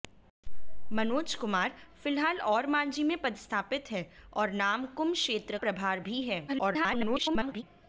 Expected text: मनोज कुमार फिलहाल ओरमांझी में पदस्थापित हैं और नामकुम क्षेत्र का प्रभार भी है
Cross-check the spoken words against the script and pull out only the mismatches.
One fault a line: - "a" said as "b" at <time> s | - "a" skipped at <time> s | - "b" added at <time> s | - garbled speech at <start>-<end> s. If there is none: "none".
- "का" skipped at 5.6 s
- garbled speech at 6.5-7.6 s